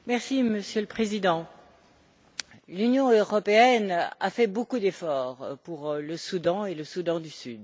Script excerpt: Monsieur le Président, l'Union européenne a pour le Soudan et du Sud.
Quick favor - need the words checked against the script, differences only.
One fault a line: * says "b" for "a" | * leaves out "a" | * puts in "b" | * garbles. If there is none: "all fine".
* puts in "fait beaucoup d'efforts"
* puts in "le Soudan"